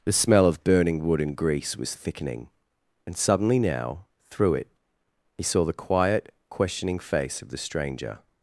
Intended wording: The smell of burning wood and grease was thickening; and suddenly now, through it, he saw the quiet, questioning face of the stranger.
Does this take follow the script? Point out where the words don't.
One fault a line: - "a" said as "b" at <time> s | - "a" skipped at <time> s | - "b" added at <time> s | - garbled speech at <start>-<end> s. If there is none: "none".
none